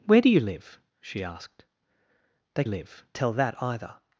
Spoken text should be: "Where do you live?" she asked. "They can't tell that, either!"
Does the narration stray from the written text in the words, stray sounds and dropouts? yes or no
yes